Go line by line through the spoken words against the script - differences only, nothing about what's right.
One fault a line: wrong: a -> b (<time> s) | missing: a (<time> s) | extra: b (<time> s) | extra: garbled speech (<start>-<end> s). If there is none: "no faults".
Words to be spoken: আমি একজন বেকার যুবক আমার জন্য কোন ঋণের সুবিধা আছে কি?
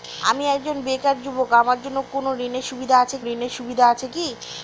extra: ঋণের সুবিধা আছে (3.3 s)